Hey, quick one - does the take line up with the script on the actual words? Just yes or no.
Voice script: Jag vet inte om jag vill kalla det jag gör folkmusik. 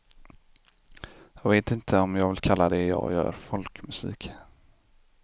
yes